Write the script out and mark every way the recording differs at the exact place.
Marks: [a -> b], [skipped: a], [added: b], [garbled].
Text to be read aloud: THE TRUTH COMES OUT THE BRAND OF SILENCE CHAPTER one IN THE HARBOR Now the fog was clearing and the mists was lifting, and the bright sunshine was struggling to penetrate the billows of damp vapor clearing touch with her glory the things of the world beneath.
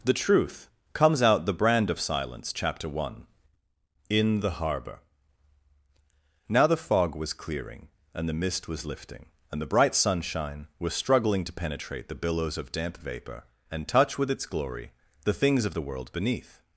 THE TRUTH COMES OUT THE BRAND OF SILENCE CHAPTER one IN THE HARBOR Now the fog was clearing and the [mists -> mist] was lifting, and the bright sunshine was struggling to penetrate the billows of damp vapor [clearing -> and] touch with [her -> its] glory the things of the world beneath.